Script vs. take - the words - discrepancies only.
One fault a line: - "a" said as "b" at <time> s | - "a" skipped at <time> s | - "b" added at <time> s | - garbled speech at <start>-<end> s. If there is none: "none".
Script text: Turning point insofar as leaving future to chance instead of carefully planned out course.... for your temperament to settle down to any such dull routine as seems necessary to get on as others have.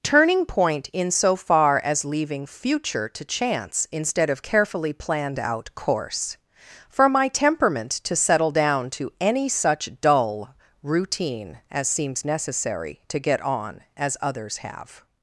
- "your" said as "my" at 7.1 s